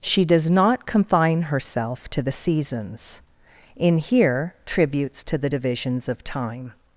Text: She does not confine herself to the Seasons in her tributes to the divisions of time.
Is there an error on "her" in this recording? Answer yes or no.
yes